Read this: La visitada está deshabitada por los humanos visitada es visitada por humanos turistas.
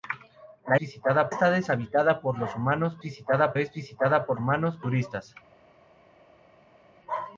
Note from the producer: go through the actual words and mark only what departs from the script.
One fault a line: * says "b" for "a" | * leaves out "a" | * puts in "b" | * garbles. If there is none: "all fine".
all fine